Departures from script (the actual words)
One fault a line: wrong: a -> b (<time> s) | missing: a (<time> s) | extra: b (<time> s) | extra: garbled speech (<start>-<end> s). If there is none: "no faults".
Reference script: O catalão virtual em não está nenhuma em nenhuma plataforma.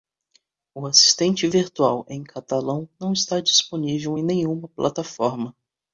wrong: catalão -> assistente (0.9 s)
extra: catalão (2.2 s)
wrong: nenhuma -> disponível (3.4 s)